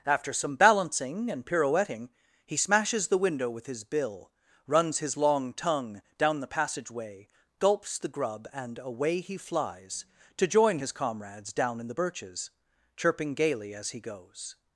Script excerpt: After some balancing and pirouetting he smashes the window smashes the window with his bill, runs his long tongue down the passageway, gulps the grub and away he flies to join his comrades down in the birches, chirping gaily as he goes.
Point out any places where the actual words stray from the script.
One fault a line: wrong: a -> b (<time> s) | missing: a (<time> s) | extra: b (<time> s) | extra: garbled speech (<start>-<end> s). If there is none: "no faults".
missing: smashes the window (3.5 s)